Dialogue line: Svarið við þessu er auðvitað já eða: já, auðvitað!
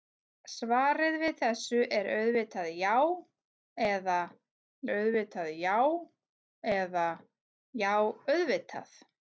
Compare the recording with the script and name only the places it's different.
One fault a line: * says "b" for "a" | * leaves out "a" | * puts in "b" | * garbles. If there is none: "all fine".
* puts in "auðvitað já eða"